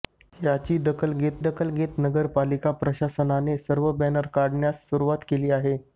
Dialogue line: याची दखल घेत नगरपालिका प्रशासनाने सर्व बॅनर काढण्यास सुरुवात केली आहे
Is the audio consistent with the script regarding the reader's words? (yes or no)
no